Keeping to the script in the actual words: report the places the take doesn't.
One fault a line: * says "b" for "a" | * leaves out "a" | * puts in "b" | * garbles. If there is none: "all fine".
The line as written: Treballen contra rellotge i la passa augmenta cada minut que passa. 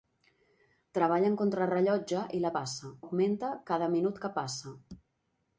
all fine